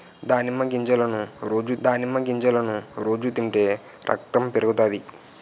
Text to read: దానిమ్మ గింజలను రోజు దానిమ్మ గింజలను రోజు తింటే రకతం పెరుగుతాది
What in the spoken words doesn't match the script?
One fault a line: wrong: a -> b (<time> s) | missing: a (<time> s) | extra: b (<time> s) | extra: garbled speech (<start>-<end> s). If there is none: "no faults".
no faults